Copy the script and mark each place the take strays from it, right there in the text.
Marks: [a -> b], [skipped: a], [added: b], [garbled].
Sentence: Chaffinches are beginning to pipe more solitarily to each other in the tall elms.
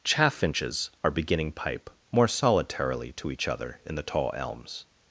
Chaffinches are beginning [skipped: to] pipe more solitarily to each other in the tall elms.